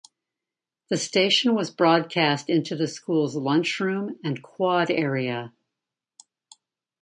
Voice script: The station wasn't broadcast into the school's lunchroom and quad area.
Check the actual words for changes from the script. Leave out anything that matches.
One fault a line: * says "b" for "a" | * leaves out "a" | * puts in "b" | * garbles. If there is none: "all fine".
* says "was" for "wasn't"